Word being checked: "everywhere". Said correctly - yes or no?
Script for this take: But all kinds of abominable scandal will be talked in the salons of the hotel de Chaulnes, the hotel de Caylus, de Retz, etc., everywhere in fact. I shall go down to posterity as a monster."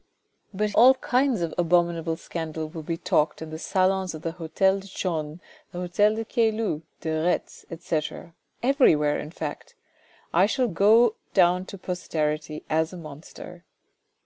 yes